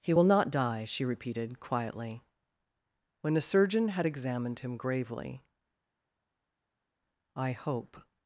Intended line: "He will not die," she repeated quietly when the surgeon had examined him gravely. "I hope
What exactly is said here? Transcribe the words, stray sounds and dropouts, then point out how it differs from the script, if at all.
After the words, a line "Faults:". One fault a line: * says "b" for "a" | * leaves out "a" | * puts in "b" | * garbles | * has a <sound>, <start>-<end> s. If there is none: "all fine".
"He will not die," she repeated quietly when the surgeon had examined him gravely. "I hope
Faults:
all fine